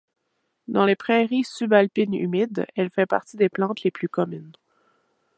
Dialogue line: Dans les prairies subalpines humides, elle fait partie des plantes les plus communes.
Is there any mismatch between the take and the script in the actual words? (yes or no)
no